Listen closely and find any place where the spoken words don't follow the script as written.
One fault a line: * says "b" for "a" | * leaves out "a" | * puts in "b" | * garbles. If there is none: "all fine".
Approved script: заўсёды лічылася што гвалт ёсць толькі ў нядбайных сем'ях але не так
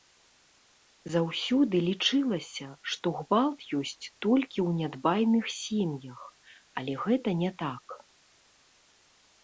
* puts in "гэта"